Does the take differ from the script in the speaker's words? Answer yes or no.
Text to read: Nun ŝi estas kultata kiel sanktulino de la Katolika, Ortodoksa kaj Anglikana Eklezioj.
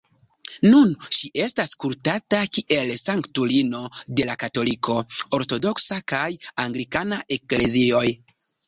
no